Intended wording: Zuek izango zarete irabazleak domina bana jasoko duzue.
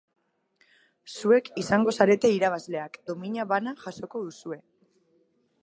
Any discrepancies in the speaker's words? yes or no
no